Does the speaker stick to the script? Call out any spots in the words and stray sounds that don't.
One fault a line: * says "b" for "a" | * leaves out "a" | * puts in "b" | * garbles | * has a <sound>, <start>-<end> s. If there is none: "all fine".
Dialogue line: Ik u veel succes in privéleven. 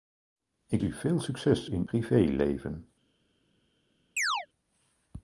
* has a chirp, 4.2-4.5 s